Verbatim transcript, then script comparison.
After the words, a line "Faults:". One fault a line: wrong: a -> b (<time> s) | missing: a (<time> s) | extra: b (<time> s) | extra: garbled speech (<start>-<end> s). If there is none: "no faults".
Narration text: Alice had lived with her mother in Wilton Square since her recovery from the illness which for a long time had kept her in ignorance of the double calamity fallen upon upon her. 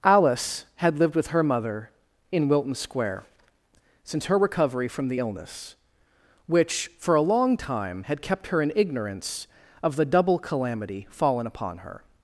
Alice had lived with her mother in Wilton Square since her recovery from the illness which for a long time had kept her in ignorance of the double calamity fallen upon her.
Faults:
missing: upon (11.8 s)